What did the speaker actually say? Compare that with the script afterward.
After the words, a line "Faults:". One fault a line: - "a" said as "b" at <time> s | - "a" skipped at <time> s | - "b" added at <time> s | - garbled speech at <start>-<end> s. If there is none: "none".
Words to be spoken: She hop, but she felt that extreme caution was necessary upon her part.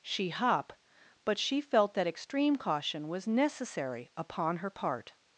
She hop, but she felt that extreme caution was necessary upon her part.
Faults:
none